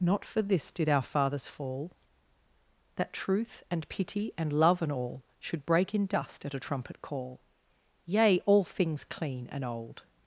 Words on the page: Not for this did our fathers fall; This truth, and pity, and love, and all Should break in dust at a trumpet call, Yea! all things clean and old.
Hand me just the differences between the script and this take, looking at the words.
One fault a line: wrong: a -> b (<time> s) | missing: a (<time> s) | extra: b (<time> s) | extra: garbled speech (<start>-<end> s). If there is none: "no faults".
wrong: This -> That (3.0 s)